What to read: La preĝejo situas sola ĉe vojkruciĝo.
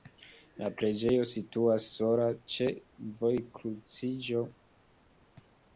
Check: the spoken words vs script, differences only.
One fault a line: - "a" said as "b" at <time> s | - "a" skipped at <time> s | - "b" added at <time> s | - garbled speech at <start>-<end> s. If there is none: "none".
none